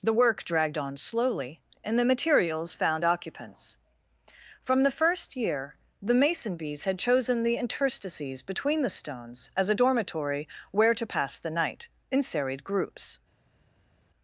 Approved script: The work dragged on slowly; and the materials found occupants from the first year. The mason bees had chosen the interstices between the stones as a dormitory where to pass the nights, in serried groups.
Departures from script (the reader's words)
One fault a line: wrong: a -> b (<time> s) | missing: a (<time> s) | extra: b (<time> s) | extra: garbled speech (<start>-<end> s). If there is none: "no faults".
wrong: nights -> night (11.5 s)